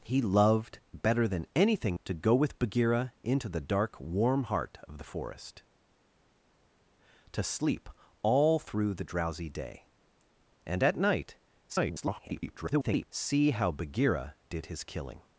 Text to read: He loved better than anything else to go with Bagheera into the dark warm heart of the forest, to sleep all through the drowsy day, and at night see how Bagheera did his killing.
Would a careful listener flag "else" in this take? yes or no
yes